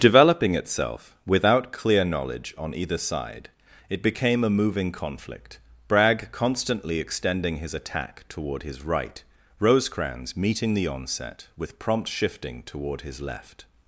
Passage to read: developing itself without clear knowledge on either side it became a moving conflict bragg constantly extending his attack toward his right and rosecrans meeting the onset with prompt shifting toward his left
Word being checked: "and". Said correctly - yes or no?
no